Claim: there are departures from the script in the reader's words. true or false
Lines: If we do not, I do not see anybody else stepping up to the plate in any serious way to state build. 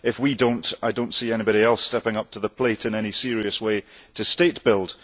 false